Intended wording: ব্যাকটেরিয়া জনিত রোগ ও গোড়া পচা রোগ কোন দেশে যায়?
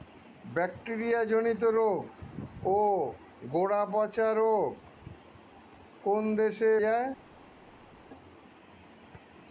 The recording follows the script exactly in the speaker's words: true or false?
true